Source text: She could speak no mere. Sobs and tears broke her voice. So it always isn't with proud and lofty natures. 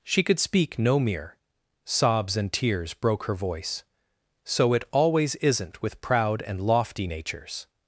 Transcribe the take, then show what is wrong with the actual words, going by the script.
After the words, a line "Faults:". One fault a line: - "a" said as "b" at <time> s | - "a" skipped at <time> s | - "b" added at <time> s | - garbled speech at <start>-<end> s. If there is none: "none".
She could speak no mere. Sobs and tears broke her voice. So it always isn't with proud and lofty natures.
Faults:
none